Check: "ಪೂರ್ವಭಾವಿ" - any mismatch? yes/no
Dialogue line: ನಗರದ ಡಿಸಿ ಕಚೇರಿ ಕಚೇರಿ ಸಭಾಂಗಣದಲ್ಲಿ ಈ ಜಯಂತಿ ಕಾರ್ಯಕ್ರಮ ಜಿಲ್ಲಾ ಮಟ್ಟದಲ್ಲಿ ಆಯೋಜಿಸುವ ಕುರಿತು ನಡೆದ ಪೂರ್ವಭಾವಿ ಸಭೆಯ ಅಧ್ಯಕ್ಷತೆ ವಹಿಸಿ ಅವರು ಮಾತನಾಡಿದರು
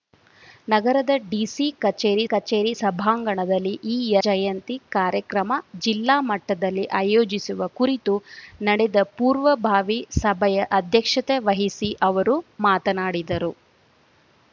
no